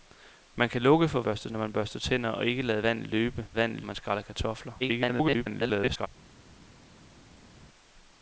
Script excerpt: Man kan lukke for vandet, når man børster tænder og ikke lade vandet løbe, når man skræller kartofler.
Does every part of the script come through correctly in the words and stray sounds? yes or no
no